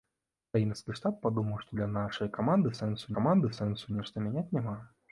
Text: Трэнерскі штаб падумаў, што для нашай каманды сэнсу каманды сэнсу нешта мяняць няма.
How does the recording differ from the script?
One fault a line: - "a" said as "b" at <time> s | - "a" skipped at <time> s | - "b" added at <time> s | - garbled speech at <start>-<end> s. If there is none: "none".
none